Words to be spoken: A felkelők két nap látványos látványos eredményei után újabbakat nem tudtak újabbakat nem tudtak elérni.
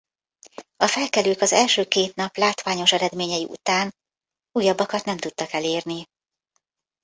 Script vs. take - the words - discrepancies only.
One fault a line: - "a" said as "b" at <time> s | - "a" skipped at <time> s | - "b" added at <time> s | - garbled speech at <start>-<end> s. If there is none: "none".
- "az első" added at 1.4 s
- "látványos" skipped at 2.9 s
- "újabbakat nem tudtak" skipped at 5.5 s